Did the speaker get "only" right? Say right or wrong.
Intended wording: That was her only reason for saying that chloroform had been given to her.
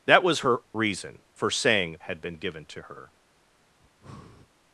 wrong